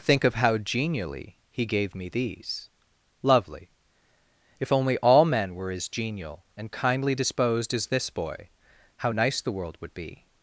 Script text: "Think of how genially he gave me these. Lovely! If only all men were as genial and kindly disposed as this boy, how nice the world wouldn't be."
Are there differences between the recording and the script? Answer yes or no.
yes